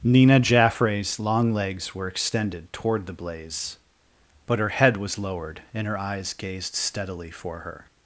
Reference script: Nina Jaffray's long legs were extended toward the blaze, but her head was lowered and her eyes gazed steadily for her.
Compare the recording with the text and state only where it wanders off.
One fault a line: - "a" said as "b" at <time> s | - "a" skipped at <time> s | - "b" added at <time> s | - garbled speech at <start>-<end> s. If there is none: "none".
none